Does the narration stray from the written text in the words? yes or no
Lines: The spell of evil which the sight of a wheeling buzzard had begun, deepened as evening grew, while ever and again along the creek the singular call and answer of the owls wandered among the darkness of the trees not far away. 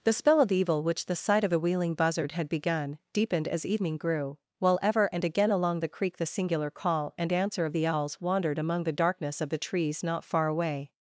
no